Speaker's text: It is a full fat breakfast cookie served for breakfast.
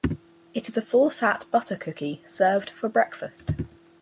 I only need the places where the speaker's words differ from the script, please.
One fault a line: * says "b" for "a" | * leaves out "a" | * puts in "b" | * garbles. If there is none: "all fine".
* says "butter" for "breakfast"